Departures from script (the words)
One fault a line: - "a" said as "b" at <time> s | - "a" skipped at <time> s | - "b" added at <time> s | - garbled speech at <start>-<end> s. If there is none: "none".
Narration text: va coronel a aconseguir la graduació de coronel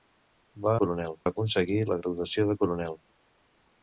none